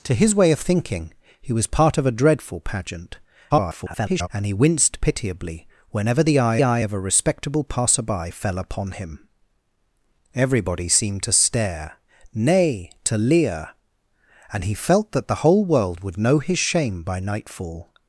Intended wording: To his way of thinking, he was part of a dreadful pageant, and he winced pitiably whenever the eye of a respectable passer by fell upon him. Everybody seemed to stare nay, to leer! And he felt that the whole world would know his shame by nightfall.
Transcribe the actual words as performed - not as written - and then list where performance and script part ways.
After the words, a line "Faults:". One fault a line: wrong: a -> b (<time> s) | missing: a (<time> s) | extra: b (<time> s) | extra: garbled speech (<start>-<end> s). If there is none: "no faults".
To his way of thinking, he was part of a dreadful pageant, [garbled] and he winced pitiably whenever the eye eye of a respectable passer by fell upon him. Everybody seemed to stare nay, to leer! And he felt that the whole world would know his shame by nightfall.
Faults:
extra: garbled speech (3.5-4.3 s)
extra: eye (6.6 s)